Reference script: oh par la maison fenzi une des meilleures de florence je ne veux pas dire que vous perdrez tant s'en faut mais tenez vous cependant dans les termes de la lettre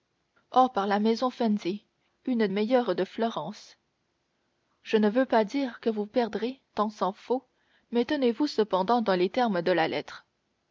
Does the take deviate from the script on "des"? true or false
true